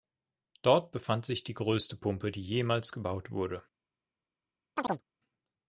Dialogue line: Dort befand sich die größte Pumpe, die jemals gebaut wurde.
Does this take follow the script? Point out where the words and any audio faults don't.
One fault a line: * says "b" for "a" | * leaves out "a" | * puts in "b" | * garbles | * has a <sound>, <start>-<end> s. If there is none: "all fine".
* has a chirp, 4.8-5.0 s